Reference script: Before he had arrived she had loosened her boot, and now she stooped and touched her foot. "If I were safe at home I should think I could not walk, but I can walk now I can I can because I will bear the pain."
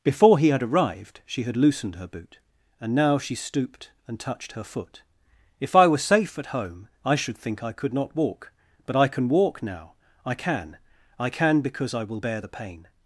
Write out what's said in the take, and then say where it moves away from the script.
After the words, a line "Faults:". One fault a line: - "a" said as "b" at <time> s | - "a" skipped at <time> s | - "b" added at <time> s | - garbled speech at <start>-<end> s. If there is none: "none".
Before he had arrived she had loosened her boot, and now she stooped and touched her foot. "If I were safe at home I should think I could not walk, but I can walk now I can I can because I will bear the pain."
Faults:
none